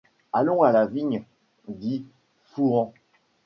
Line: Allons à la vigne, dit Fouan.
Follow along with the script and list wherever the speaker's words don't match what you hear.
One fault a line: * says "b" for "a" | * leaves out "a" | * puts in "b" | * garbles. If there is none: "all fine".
all fine